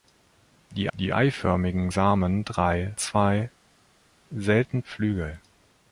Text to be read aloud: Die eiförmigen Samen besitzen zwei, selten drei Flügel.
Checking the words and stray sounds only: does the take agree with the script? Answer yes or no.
no